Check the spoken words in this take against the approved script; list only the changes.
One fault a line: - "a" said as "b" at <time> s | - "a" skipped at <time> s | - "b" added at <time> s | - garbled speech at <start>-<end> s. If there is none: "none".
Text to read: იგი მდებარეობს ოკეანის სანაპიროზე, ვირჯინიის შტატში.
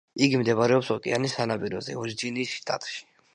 none